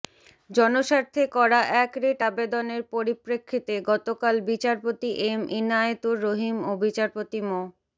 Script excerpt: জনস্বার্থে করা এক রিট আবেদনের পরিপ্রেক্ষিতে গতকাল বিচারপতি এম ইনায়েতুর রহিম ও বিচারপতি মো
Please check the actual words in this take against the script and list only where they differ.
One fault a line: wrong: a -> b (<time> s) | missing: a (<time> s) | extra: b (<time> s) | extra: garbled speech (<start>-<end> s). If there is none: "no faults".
no faults